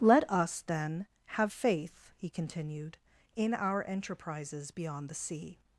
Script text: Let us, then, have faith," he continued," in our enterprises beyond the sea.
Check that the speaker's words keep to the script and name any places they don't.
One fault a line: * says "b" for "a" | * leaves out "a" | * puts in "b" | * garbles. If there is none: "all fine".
all fine